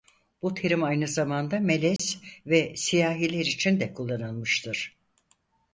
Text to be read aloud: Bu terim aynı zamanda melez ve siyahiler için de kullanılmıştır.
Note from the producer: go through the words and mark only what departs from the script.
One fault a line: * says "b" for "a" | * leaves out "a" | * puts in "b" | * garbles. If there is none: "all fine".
all fine